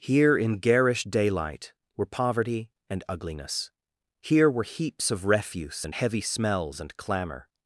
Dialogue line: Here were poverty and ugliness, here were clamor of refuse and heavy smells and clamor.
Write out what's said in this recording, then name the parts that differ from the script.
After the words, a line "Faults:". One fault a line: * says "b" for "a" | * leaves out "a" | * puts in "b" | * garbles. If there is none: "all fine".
Here in garish daylight were poverty and ugliness, here were heaps of refuse and heavy smells and clamor.
Faults:
* puts in "in garish daylight"
* says "heaps" for "clamor"